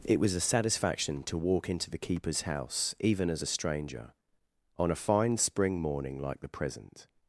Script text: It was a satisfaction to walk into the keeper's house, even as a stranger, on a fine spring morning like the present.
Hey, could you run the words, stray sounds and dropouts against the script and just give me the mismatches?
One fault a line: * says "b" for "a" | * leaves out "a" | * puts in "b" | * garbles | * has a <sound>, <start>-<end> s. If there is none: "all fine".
all fine